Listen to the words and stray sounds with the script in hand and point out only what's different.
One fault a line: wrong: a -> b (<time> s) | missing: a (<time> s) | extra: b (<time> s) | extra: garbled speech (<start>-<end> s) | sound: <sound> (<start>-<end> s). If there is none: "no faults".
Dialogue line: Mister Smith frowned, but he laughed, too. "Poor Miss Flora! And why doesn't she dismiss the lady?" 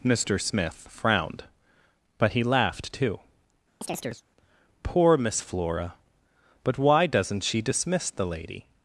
sound: chirp (3.8-4.2 s)
wrong: And -> But (6.6 s)